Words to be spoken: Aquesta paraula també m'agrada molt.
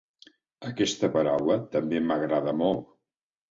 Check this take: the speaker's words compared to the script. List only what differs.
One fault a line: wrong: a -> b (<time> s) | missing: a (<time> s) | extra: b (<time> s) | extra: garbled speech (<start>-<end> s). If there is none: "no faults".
no faults